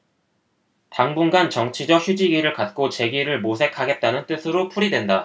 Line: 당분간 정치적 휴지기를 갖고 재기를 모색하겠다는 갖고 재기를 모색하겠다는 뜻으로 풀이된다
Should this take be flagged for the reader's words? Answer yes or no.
yes